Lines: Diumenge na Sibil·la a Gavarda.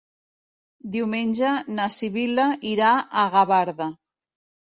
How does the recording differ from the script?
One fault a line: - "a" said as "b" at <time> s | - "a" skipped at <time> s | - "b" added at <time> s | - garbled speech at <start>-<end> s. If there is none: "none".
- "irà" added at 2.7 s